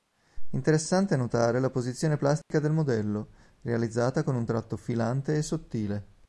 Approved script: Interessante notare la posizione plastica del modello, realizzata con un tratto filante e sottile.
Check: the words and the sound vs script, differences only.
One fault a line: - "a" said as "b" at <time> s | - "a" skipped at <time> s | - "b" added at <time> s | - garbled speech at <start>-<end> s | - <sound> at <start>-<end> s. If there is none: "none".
- dropout at 2.4-2.5 s